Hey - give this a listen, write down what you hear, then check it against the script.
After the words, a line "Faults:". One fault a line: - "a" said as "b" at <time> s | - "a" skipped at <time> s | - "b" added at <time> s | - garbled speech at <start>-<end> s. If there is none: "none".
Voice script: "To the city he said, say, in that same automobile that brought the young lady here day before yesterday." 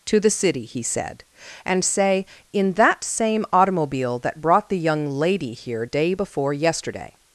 "To the city he said, and say, in that same automobile that brought the young lady here day before yesterday."
Faults:
- "and" added at 1.6 s